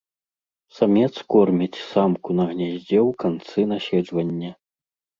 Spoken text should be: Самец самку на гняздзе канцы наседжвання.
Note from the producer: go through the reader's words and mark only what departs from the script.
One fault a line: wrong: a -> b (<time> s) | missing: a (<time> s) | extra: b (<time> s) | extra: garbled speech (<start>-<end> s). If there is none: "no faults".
extra: корміць (1.4 s)
extra: ў (3.1 s)